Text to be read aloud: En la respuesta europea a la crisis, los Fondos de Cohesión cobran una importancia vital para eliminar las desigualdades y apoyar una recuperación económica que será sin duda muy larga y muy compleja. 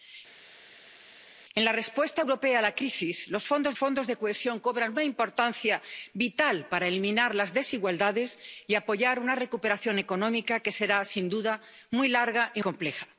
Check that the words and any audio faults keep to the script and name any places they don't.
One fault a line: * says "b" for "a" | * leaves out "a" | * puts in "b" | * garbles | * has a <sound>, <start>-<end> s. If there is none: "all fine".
* puts in "Fondos"
* leaves out "muy"